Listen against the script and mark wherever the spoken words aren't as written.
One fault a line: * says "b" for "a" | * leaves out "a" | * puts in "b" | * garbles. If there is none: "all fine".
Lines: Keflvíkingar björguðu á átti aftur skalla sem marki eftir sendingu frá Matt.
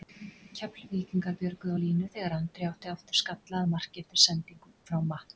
* puts in "línu þegar Andri"
* says "að" for "sem"